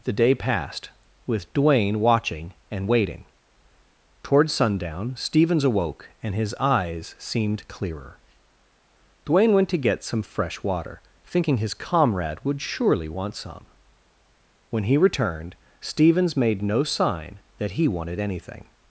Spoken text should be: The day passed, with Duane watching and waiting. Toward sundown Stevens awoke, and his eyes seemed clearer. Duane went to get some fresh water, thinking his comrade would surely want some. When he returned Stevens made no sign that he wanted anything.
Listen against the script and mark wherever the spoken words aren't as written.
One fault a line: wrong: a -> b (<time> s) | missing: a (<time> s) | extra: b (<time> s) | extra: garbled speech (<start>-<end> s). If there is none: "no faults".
no faults